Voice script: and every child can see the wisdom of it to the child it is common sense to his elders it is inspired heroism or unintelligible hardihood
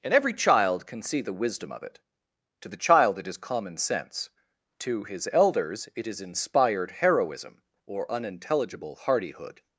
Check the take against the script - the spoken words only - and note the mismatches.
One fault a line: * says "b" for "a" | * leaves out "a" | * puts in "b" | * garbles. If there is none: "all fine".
all fine